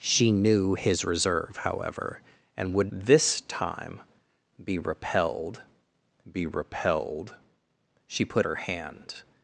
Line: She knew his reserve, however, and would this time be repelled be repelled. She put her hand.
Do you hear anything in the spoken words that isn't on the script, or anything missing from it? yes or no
no